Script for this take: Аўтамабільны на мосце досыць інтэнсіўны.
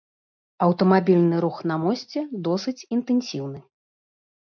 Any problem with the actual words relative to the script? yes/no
yes